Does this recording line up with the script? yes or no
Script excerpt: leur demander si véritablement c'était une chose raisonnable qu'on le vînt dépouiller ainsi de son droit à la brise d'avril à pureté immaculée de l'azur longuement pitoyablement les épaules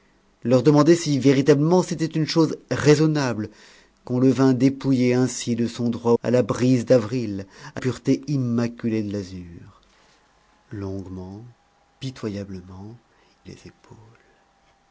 yes